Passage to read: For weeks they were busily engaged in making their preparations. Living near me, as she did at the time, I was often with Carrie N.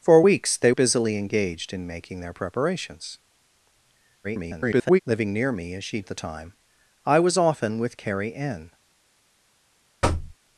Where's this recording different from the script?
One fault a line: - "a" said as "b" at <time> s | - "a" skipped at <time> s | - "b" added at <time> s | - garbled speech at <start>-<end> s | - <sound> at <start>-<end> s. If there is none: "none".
- "were" skipped at 0.7 s
- garbled speech at 4.2-5.0 s
- "did" skipped at 6.0 s
- thud at 10.0-10.4 s